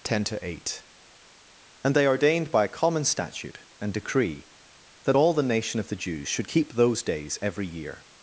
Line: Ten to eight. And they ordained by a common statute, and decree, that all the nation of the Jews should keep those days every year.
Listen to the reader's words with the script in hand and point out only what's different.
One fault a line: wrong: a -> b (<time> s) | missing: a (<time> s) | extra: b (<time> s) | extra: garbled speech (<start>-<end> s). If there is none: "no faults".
no faults